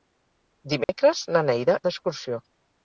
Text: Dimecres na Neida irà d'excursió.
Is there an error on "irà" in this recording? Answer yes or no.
yes